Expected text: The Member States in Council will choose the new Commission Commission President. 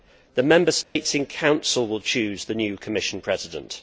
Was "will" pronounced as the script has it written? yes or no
yes